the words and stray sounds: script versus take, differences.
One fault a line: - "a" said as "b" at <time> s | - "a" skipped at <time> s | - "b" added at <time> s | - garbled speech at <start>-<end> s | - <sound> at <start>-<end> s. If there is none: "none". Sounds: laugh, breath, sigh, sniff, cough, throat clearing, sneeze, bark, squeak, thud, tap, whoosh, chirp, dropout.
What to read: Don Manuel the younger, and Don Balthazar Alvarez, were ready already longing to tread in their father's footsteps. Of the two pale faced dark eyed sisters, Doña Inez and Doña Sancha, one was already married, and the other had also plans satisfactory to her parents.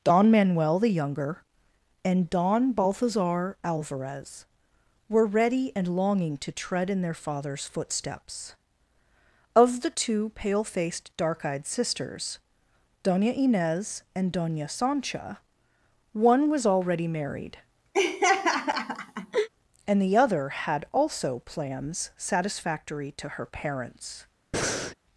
- "already" said as "and" at 5.8 s
- laugh at 17.9-19.5 s
- breath at 24.5-25.0 s